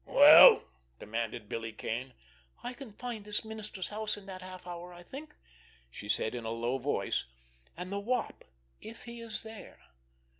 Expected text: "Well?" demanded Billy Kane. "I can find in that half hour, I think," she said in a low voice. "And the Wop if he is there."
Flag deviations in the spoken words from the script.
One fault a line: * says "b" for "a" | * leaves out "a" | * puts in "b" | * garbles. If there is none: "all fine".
* puts in "this minister's house"